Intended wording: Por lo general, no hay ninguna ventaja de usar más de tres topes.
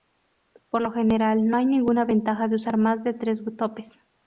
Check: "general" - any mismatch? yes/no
no